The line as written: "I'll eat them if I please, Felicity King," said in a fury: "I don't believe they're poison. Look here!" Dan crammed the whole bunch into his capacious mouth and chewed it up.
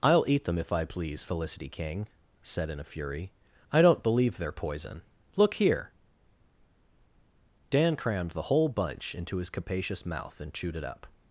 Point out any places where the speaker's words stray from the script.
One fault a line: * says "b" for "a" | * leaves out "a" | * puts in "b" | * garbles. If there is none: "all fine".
all fine